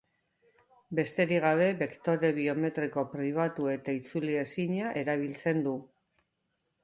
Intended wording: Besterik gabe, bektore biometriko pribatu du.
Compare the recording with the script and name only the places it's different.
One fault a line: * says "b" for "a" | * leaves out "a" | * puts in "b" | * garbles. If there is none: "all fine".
* puts in "eta itzulezina erabiltzen"